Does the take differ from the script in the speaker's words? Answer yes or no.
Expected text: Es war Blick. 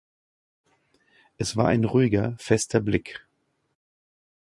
yes